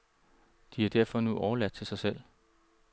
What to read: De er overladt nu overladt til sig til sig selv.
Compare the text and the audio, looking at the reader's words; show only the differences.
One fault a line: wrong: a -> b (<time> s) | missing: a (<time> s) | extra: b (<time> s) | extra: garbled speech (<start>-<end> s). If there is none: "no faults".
wrong: overladt -> derfor (0.9 s)
missing: til sig (2.0 s)